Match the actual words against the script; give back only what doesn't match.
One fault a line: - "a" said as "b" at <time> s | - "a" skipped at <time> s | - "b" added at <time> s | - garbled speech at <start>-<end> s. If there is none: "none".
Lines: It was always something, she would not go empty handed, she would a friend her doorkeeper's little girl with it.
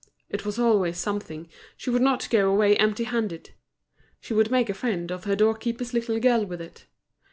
- "away" added at 2.5 s
- "make" added at 4.5 s
- "of" added at 5.1 s